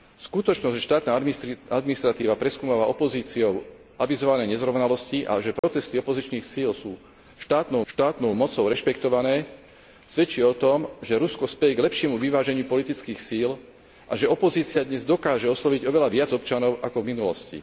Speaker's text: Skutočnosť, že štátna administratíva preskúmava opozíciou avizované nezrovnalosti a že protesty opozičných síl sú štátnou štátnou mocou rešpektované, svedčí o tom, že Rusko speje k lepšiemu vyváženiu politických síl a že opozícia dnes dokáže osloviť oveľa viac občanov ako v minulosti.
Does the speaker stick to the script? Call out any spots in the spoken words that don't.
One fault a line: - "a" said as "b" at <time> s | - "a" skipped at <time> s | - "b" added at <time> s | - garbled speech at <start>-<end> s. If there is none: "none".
none